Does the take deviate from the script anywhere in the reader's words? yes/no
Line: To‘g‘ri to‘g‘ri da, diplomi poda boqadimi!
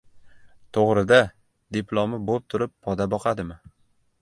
yes